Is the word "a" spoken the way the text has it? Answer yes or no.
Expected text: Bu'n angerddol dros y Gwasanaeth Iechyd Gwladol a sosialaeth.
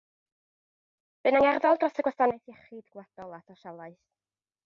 yes